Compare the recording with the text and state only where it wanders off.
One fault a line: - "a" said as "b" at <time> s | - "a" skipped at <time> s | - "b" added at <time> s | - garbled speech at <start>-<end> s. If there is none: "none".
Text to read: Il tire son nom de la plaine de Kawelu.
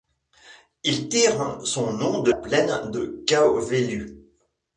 - "la" skipped at 2.3 s